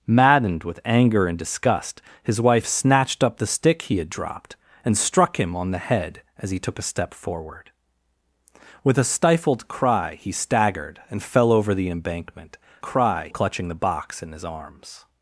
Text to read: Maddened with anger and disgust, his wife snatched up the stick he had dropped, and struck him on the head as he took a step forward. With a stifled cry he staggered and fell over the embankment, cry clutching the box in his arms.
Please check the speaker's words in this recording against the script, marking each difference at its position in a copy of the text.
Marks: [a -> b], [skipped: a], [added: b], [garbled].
Maddened with anger and disgust, his wife snatched up the stick he had dropped, and struck him on the head as he took a step forward. With a stifled cry he staggered and fell over the embankment, cry clutching the box in his arms.